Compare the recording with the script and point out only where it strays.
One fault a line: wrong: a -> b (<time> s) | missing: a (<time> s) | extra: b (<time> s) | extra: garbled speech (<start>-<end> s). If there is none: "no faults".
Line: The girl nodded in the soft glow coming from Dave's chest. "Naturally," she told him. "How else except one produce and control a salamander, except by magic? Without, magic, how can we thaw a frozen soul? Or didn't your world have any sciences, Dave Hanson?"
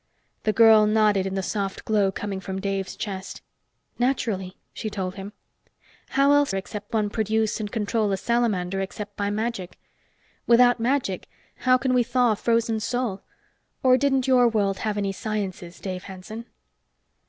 no faults